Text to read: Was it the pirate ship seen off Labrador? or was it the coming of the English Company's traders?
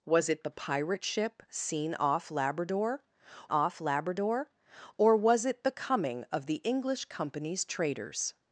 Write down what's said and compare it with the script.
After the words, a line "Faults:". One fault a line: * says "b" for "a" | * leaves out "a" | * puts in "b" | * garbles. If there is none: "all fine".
Was it the pirate ship seen off Labrador off Labrador? or was it the coming of the English Company's traders?
Faults:
* puts in "off Labrador"